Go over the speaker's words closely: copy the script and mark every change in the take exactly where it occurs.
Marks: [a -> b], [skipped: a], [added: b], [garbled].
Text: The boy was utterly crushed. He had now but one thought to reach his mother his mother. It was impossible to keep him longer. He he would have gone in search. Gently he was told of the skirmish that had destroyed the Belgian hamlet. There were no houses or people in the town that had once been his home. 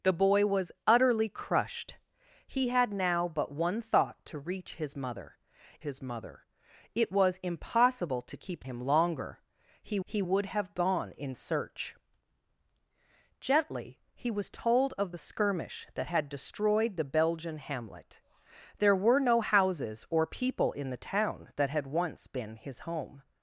The boy was utterly crushed. He had now but one thought to reach his mother his mother. It was impossible to keep him longer. He he would have gone in search. Gently he was told of the skirmish that had destroyed the Belgian hamlet. There were no houses or people in the town that had once been his home.